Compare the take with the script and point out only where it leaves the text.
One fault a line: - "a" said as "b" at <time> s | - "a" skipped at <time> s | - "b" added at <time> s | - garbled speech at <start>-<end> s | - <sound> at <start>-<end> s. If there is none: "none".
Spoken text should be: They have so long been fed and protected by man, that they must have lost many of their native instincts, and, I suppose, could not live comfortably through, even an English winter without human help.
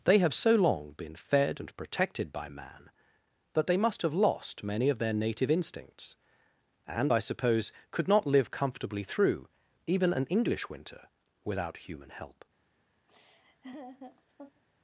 - laugh at 13.1-14.6 s